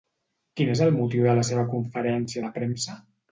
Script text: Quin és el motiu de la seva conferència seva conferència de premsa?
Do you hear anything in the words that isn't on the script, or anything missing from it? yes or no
yes